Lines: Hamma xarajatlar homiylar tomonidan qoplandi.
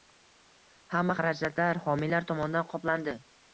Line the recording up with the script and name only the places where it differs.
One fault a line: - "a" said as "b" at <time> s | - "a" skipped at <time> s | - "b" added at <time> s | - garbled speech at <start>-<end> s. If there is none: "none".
none